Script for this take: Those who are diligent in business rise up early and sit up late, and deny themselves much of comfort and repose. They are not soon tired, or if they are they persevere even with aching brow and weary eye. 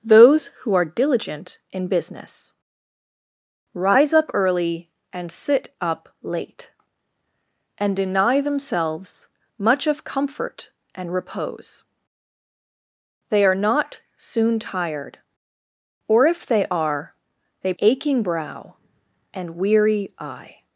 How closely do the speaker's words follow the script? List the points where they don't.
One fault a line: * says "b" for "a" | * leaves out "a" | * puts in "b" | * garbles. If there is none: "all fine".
* leaves out "persevere even with"